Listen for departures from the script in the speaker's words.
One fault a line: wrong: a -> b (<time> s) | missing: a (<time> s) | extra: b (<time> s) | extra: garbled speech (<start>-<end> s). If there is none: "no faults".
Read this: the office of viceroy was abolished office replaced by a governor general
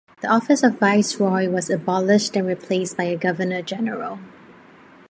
wrong: office -> and (2.3 s)